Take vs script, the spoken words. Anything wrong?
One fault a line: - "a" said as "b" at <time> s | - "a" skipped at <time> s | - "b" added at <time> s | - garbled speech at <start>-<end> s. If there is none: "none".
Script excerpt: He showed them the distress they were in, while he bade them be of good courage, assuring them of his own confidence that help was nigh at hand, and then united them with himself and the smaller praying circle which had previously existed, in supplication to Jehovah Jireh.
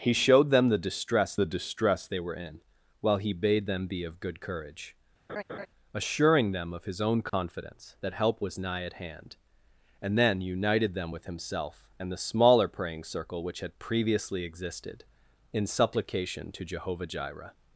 - "the distress" added at 1.4 s